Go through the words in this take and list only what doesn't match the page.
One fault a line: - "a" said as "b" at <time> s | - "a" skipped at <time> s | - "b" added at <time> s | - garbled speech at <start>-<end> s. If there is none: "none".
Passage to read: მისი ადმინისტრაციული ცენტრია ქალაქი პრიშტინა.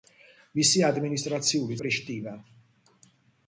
- "ცენტრია ქალაქი" skipped at 1.8 s